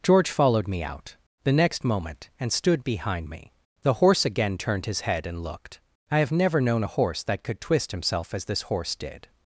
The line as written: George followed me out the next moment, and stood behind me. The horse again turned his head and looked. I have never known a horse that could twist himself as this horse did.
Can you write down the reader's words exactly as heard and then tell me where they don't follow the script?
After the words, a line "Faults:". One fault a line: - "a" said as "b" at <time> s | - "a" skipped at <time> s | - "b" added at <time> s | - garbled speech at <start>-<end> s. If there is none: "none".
George followed me out the next moment, and stood behind me. The horse again turned his head and looked. I have never known a horse that could twist himself as this horse did.
Faults:
none